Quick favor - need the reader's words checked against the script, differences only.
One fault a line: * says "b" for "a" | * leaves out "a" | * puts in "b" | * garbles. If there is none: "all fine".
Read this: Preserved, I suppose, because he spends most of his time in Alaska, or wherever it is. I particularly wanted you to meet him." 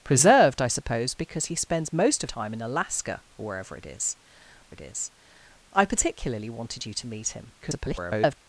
* leaves out "his"
* puts in "it is"
* garbles